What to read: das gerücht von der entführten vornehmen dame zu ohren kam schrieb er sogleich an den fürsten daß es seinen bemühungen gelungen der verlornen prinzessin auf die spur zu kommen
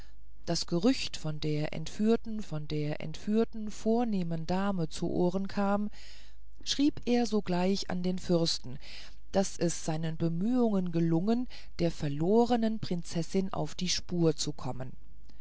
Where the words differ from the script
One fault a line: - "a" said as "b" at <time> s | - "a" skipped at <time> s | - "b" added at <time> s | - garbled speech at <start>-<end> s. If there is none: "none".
- "von der entführten" added at 2.4 s